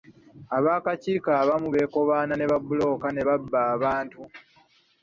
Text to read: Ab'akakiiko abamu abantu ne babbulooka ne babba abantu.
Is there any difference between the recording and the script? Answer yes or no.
yes